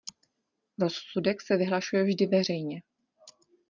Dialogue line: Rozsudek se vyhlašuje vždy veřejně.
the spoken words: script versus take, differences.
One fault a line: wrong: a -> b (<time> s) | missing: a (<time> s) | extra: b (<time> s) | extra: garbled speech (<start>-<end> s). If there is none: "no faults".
no faults